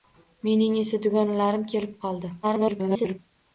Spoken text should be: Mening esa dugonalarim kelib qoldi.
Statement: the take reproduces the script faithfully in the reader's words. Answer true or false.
false